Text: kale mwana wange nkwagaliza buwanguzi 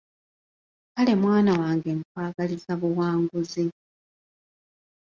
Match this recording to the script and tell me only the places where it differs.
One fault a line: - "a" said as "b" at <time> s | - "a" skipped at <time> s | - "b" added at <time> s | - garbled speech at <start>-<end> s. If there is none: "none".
none